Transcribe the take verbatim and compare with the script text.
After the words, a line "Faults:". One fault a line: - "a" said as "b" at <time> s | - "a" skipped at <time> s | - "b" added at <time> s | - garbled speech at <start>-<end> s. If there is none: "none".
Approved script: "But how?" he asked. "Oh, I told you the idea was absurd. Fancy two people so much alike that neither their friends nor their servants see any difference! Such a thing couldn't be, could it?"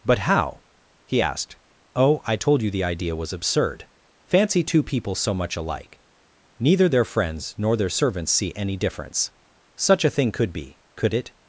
"But how?" he asked. "Oh, I told you the idea was absurd. Fancy two people so much alike neither their friends nor their servants see any difference! Such a thing could be, could it?"
Faults:
- "that" skipped at 6.0 s
- "couldn't" said as "could" at 10.3 s